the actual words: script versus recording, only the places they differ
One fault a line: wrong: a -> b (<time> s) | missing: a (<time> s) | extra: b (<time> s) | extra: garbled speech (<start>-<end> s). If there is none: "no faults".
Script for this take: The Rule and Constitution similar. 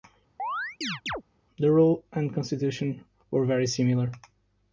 extra: were very (3.3 s)